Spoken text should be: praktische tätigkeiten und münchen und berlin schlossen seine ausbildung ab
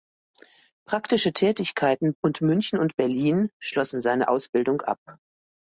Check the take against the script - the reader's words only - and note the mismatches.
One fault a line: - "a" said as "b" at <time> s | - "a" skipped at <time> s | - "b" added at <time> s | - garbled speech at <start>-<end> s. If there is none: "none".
none